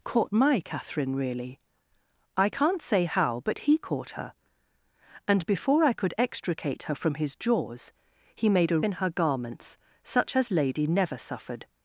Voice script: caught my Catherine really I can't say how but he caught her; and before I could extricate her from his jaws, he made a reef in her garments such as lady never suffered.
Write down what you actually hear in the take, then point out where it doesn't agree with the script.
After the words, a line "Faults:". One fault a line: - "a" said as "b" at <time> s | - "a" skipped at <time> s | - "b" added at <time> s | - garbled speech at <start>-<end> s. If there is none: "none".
caught my Catherine really I can't say how but he caught her; and before I could extricate her from his jaws, he made a in her garments such as lady never suffered.
Faults:
- "reef" skipped at 8.8 s